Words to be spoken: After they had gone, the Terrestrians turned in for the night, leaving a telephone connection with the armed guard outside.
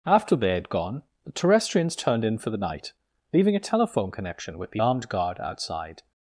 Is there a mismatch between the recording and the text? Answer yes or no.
no